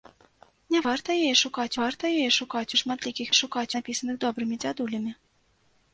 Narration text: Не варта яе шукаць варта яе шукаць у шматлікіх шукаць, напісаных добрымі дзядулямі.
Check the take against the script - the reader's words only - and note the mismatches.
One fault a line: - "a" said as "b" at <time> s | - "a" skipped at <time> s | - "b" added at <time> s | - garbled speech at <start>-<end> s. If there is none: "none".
none